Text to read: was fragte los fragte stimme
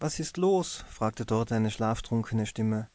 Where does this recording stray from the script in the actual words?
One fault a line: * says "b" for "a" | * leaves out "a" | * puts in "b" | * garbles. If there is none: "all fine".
* says "ist" for "fragte"
* puts in "dort eine schlaftrunkene"